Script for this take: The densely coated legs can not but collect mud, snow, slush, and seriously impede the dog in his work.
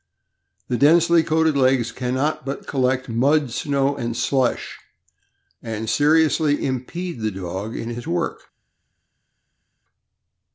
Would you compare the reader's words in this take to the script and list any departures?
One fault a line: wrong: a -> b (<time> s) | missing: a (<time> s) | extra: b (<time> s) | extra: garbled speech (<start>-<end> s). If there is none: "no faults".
extra: and (4.0 s)